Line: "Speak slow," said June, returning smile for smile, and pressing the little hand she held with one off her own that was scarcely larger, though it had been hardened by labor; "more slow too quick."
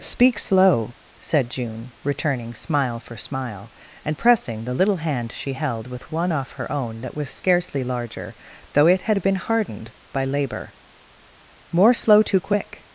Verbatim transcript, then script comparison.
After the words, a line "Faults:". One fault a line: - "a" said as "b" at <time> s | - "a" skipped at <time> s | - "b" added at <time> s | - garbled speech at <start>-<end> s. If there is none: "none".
"Speak slow," said June, returning smile for smile, and pressing the little hand she held with one off her own that was scarcely larger, though it had been hardened by labor; "more slow too quick."
Faults:
none